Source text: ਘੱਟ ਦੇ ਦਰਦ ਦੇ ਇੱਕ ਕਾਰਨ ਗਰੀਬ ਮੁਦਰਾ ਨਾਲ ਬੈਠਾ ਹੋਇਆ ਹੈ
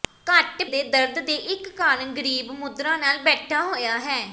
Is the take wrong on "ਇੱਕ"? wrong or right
right